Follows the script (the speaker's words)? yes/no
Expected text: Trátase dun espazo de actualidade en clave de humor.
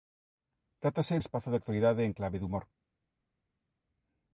no